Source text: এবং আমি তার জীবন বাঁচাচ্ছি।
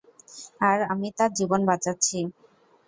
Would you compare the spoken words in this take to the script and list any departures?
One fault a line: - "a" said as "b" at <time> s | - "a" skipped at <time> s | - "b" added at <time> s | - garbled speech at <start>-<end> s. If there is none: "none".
- "এবং" said as "আর" at 0.6 s